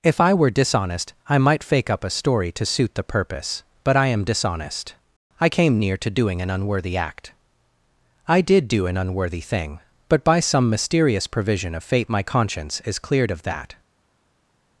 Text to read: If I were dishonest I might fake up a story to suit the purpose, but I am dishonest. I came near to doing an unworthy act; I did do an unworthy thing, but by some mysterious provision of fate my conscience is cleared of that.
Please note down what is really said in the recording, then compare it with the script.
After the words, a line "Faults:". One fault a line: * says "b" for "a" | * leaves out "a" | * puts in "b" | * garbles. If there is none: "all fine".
If I were dishonest I might fake up a story to suit the purpose, but I am dishonest. I came near to doing an unworthy act; I did do an unworthy thing, but by some mysterious provision of fate my conscience is cleared of that.
Faults:
all fine